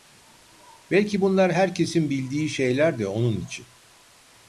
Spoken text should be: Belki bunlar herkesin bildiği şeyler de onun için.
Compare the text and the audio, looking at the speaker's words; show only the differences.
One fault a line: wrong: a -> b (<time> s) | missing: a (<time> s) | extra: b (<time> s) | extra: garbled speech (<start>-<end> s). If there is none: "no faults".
no faults